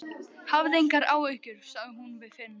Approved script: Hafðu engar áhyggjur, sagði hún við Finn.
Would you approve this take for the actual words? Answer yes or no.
yes